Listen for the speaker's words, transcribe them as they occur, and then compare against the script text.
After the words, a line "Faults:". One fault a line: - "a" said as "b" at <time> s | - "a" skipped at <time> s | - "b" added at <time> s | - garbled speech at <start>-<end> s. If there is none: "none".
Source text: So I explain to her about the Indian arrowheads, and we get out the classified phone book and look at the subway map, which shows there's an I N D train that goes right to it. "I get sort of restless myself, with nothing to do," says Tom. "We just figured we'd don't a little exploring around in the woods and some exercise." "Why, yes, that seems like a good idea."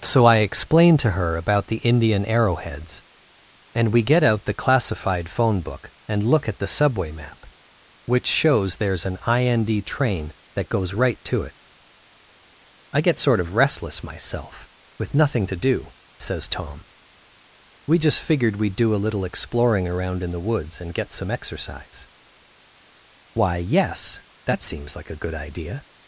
So I explain to her about the Indian arrowheads, and we get out the classified phone book and look at the subway map, which shows there's an I N D train that goes right to it. "I get sort of restless myself, with nothing to do," says Tom. "We just figured we'd do a little exploring around in the woods and get some exercise." "Why, yes, that seems like a good idea."
Faults:
- "don't" said as "do" at 18.8 s
- "get" added at 20.9 s